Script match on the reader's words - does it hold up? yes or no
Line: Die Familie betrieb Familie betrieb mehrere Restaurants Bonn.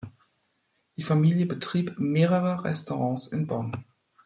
no